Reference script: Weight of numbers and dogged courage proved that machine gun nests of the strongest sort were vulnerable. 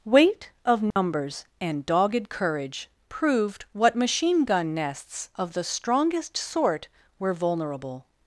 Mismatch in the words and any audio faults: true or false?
true